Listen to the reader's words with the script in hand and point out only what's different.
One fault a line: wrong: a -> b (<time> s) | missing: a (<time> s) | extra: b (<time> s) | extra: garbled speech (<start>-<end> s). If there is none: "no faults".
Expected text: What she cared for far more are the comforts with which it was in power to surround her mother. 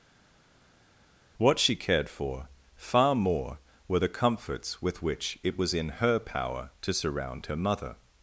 wrong: are -> were (3.9 s)
extra: her (6.0 s)